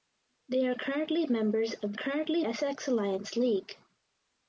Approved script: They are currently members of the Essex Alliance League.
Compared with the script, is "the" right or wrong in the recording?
wrong